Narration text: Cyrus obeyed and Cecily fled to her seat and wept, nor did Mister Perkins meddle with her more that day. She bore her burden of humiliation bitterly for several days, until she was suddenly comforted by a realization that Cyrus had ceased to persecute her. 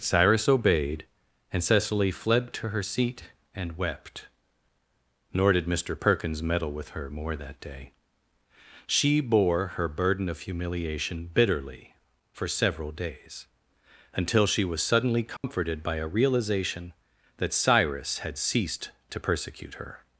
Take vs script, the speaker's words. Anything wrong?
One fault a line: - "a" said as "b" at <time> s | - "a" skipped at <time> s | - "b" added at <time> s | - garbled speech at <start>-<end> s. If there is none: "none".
none